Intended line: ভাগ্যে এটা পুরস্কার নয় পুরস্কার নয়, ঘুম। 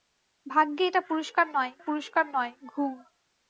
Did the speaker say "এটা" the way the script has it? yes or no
yes